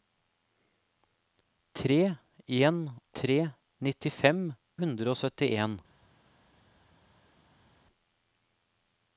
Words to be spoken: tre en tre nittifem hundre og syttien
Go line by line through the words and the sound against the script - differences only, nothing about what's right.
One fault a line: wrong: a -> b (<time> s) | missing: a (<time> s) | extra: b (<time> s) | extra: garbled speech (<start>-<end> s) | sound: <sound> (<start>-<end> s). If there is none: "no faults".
no faults